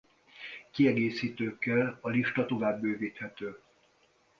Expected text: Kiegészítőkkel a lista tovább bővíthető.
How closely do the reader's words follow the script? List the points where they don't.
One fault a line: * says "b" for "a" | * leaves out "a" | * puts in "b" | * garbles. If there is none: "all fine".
all fine